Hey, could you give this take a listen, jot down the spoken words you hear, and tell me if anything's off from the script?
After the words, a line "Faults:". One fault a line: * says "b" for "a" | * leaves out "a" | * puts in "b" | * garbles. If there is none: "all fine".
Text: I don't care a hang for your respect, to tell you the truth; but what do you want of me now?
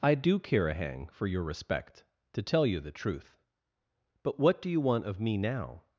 I do care a hang for your respect, to tell you the truth; but what do you want of me now?
Faults:
* says "do" for "don't"